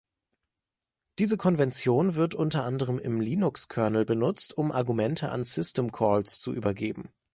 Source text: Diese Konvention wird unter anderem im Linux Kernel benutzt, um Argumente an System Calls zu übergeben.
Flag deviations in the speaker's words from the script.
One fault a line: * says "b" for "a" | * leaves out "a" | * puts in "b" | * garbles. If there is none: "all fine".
all fine